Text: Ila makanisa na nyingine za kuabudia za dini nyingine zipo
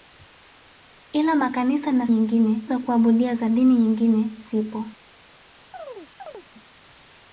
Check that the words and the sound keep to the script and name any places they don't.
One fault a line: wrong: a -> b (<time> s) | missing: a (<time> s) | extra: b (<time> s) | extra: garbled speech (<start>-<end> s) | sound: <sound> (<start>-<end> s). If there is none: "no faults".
sound: chirp (5.7-6.5 s)